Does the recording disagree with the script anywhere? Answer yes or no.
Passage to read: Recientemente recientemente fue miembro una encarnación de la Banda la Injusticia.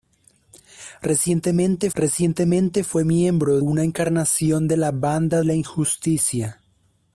no